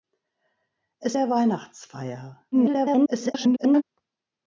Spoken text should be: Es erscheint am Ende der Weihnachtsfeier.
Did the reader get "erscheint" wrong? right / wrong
wrong